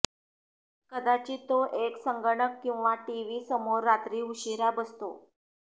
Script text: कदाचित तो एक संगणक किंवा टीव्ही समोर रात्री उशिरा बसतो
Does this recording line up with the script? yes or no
yes